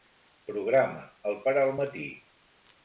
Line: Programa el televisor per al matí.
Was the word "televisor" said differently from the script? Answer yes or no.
yes